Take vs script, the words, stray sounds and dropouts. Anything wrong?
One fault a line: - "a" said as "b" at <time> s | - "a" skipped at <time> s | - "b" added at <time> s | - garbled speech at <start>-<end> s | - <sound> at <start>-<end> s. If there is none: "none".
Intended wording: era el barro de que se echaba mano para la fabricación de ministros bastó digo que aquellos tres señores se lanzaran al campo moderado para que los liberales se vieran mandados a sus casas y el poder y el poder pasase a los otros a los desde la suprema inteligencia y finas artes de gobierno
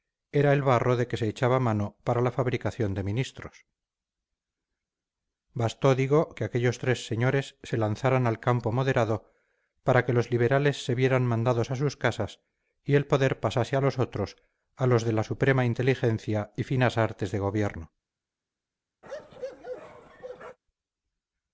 - "y el poder" skipped at 13.4 s
- "desde" said as "de" at 15.0 s
- bark at 19.0-20.6 s